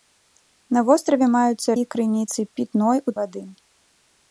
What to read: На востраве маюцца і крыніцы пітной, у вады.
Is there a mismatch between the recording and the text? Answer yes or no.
no